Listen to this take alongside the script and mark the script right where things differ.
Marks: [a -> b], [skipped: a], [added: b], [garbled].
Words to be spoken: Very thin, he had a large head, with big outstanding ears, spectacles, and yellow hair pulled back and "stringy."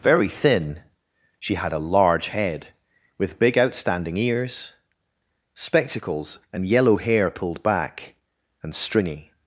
Very thin, [he -> she] had a large head, with big outstanding ears, spectacles, and yellow hair pulled back and "stringy."